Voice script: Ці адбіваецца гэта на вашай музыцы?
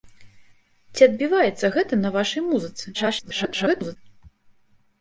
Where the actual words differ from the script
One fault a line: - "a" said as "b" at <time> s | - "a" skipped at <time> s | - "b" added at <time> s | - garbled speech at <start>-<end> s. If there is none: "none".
- garbled speech at 2.9-4.0 s